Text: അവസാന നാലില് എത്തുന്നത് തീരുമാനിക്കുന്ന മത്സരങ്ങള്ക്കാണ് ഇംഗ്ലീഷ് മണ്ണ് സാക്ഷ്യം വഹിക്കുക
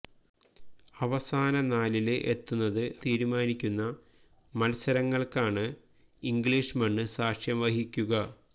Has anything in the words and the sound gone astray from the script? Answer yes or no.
no